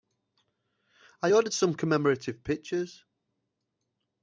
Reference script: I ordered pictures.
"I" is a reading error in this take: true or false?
false